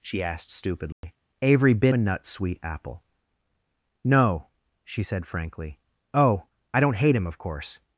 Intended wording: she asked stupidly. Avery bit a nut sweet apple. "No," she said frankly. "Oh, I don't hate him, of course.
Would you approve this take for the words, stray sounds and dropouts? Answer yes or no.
no